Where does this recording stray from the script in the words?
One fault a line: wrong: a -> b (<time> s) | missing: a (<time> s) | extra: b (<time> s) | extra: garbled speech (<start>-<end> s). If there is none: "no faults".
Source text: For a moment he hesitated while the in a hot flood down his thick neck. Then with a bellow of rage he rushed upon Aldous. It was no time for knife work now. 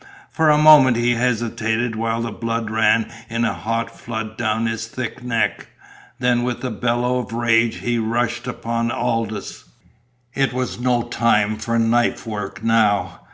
extra: blood ran (2.3 s)